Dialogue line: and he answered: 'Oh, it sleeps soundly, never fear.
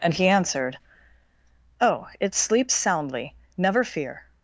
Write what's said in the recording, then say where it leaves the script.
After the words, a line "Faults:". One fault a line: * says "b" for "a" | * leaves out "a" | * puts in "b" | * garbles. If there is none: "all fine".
and he answered: 'Oh, it sleeps soundly, never fear.
Faults:
all fine